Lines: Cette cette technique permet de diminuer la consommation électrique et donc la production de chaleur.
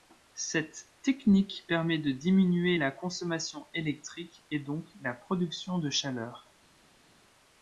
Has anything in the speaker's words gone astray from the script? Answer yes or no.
yes